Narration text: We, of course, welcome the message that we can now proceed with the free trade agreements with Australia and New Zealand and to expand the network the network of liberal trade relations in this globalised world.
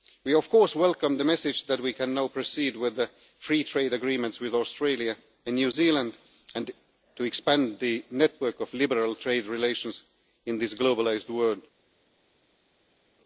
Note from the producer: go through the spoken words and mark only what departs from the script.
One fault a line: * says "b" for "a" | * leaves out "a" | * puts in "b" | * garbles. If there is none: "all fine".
* leaves out "the network"